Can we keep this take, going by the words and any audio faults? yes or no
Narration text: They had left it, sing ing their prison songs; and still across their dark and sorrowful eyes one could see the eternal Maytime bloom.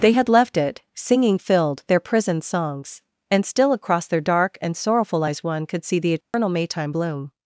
no